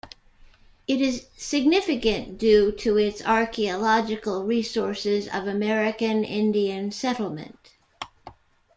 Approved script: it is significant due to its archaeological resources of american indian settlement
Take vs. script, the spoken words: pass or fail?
pass